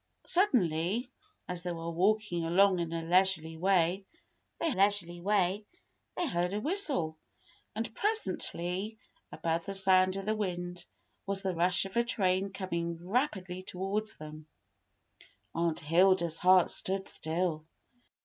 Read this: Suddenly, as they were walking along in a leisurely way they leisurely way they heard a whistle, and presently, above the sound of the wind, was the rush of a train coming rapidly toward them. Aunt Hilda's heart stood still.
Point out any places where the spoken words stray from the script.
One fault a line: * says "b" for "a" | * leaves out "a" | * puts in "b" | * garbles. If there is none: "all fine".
all fine